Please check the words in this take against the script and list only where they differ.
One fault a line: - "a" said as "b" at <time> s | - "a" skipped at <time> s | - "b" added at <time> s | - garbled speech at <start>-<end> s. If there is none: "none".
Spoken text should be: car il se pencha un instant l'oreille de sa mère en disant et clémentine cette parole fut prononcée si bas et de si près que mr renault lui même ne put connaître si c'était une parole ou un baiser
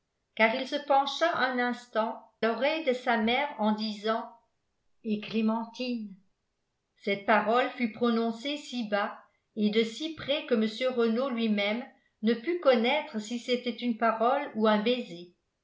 none